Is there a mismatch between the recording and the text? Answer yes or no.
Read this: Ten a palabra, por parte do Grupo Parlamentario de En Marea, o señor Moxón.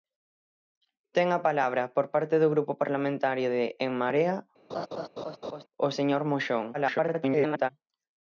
yes